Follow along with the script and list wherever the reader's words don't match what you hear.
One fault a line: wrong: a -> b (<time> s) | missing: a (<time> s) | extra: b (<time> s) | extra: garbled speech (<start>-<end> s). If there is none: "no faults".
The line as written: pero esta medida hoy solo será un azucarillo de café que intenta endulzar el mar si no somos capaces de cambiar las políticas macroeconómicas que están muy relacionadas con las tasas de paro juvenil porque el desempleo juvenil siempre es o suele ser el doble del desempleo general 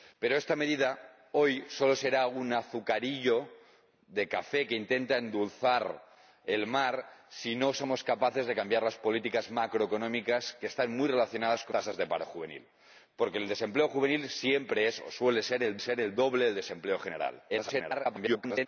missing: las (11.8 s)
extra: ser el (15.8 s)
extra: garbled speech (17.5-18.7 s)